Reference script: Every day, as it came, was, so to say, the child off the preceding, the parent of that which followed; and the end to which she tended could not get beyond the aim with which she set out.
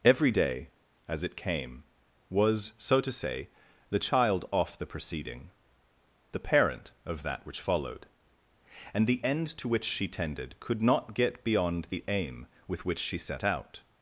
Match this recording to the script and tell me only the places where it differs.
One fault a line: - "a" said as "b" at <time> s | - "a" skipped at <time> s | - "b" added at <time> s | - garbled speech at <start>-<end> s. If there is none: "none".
none